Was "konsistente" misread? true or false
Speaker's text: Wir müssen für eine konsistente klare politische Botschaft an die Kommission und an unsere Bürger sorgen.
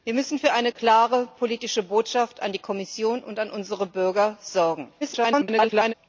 true